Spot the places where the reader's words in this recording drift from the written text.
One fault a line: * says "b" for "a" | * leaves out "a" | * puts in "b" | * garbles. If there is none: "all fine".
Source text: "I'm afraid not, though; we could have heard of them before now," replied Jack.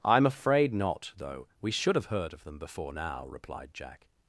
* says "should" for "could"